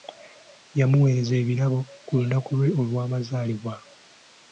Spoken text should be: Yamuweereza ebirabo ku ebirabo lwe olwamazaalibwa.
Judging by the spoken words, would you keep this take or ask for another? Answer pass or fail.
fail